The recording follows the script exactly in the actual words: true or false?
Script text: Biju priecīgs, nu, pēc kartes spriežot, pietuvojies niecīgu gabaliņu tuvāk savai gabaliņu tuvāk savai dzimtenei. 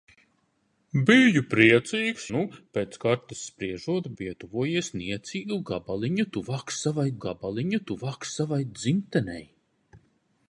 true